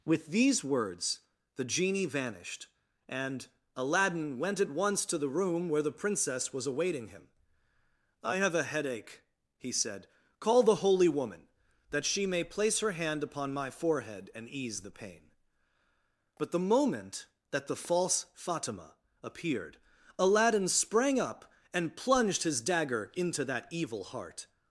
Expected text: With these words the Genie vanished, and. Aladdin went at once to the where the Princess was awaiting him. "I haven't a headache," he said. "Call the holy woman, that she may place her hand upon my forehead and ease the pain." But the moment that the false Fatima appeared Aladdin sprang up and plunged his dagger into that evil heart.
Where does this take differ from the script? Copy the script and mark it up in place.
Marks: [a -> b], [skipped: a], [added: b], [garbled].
With these words the Genie vanished, and. Aladdin went at once to the [added: room] where the Princess was awaiting him. "I [haven't -> have] a headache," he said. "Call the holy woman, that she may place her hand upon my forehead and ease the pain." But the moment that the false Fatima appeared Aladdin sprang up and plunged his dagger into that evil heart.